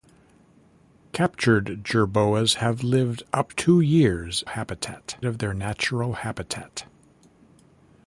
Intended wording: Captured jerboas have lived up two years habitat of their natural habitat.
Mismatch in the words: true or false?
false